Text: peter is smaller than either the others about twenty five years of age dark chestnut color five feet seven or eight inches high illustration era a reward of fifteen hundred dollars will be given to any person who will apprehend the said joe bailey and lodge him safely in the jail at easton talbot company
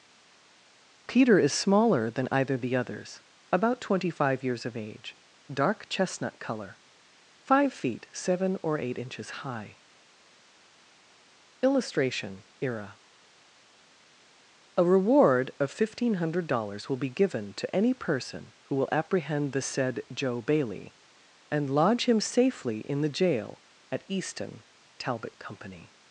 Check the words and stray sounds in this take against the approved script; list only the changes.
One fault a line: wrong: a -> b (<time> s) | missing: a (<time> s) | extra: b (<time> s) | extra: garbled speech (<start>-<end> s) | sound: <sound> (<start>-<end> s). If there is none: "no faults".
no faults